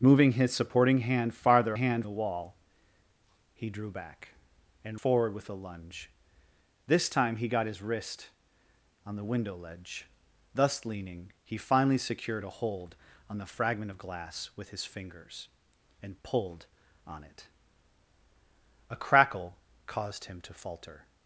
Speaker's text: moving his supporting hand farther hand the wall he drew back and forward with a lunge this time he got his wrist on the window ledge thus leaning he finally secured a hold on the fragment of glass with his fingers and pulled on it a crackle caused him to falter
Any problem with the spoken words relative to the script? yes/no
no